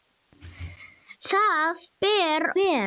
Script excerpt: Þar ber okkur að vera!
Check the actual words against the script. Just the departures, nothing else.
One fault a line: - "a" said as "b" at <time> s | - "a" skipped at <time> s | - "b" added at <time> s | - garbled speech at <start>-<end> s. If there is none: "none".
- "okkur að" skipped at 2.5 s